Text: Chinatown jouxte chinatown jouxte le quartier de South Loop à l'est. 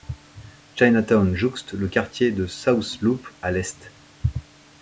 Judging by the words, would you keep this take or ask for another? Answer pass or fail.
fail